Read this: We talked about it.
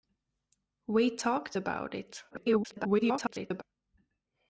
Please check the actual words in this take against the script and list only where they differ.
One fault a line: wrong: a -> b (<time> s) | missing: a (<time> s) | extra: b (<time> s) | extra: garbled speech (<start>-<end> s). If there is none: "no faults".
extra: garbled speech (2.3-3.6 s)